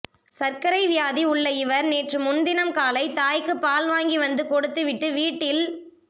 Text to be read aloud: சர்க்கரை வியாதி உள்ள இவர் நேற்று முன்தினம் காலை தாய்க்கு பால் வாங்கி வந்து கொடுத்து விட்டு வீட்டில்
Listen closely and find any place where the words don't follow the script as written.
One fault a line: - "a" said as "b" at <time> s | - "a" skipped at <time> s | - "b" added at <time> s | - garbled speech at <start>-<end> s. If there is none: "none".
none